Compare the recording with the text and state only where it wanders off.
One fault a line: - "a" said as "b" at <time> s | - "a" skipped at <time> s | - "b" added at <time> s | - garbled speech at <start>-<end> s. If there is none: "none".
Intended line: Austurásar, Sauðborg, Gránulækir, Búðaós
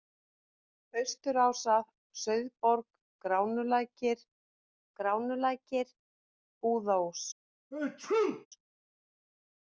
- "Gránulækir" added at 5.0 s